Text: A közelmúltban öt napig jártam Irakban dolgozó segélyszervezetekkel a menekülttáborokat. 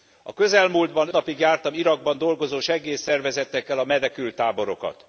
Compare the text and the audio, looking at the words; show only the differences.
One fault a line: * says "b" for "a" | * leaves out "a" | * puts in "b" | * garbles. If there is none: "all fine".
* leaves out "öt"